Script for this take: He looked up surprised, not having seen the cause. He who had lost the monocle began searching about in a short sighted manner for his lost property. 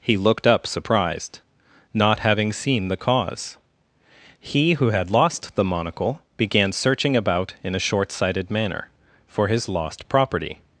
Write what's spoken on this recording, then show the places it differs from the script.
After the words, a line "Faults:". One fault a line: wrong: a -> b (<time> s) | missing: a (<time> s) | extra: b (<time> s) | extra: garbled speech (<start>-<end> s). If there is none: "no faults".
He looked up surprised, not having seen the cause. He who had lost the monocle began searching about in a short sighted manner for his lost property.
Faults:
no faults